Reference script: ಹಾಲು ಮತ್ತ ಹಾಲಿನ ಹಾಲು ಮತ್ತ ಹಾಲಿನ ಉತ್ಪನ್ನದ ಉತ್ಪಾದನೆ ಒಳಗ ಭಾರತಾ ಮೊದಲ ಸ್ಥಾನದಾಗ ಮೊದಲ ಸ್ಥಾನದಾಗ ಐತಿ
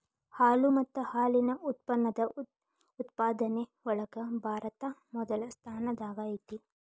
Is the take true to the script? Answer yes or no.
no